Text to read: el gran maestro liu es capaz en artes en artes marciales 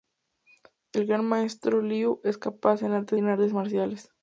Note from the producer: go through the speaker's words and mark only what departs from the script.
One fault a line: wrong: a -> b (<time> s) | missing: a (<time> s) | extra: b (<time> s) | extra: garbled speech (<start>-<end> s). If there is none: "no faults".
no faults